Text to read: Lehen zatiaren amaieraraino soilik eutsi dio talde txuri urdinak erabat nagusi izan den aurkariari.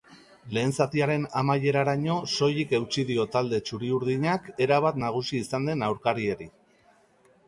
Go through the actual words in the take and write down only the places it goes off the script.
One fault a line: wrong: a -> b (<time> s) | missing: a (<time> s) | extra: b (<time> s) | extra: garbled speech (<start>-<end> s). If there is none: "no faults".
no faults